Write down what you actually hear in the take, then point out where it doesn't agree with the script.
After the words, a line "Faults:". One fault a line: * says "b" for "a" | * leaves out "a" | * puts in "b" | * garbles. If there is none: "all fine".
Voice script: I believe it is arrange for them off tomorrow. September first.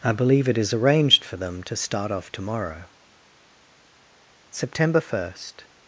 I believe it is arranged for them to start off tomorrow. September first.
Faults:
* says "arranged" for "arrange"
* puts in "to start"